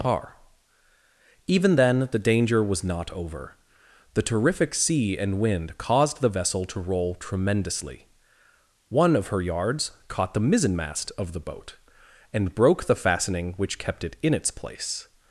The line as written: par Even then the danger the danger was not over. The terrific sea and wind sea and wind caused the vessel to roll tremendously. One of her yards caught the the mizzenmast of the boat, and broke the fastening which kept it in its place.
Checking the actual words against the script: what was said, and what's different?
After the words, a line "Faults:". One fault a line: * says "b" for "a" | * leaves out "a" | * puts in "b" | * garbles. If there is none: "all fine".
par Even then the danger was not over. The terrific sea and wind caused the vessel to roll tremendously. One of her yards caught the mizzenmast of the boat, and broke the fastening which kept it in its place.
Faults:
* leaves out "the danger"
* leaves out "sea and wind"
* leaves out "the"